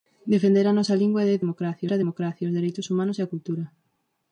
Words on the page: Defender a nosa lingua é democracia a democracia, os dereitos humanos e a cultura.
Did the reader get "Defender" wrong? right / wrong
right